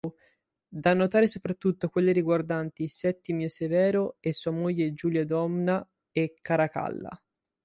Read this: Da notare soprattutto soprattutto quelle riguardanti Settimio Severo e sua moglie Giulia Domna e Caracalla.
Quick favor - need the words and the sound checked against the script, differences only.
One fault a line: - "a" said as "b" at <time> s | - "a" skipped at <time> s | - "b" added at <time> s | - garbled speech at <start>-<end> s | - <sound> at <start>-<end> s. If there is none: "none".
- "soprattutto" skipped at 1.9 s